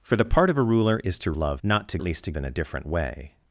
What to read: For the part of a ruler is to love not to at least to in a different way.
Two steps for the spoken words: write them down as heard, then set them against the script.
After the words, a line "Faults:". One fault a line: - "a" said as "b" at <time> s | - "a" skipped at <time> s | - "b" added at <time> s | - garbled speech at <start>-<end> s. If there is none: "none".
For the part of a ruler is to love not to at least to in a different way.
Faults:
none